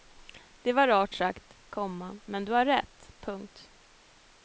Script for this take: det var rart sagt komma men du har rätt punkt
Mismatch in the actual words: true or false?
false